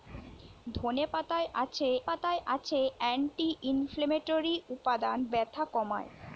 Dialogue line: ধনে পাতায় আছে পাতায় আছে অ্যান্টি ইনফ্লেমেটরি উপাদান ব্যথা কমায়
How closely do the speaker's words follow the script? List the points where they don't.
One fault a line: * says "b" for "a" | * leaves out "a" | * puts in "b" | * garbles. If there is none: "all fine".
all fine